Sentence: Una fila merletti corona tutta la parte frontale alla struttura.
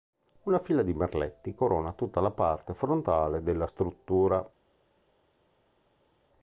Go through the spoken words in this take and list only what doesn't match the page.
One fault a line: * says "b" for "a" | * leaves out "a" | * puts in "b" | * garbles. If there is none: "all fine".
* puts in "di"
* says "della" for "alla"